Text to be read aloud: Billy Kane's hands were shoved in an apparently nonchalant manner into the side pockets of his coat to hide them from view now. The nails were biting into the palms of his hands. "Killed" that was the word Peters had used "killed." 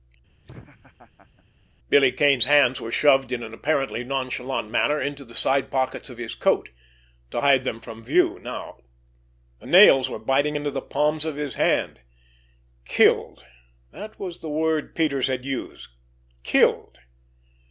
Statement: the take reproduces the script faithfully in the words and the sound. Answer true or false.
false